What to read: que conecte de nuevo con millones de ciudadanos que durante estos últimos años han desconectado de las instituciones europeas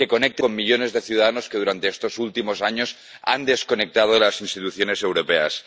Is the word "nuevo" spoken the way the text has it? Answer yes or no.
no